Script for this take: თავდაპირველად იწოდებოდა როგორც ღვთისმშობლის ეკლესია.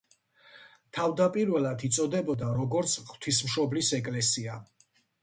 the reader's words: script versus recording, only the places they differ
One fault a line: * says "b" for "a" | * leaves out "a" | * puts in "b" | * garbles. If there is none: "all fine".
all fine